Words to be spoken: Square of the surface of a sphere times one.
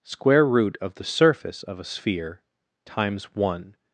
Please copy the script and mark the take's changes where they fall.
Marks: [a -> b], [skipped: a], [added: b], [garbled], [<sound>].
Square [added: root] of the surface of a sphere times one.